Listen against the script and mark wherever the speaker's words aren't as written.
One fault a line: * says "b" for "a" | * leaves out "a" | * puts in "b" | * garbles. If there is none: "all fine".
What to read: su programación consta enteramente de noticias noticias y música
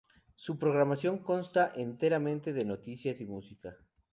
* leaves out "noticias"